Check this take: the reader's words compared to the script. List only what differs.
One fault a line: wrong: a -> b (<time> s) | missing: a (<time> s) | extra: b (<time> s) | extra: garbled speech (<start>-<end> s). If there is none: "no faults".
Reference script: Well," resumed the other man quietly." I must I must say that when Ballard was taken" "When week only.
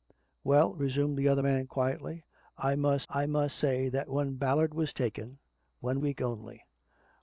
no faults